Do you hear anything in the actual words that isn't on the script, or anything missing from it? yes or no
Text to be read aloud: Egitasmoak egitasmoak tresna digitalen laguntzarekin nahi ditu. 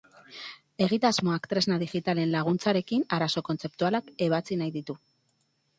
yes